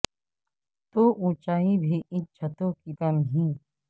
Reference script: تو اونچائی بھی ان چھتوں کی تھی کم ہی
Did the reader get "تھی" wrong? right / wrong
wrong